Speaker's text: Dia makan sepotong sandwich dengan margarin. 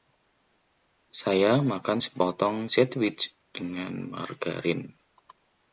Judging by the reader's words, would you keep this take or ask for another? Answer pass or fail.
fail